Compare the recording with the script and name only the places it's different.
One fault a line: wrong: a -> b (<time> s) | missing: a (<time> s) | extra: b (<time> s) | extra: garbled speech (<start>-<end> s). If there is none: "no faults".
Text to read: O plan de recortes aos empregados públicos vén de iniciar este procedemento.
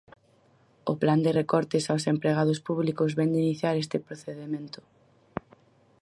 no faults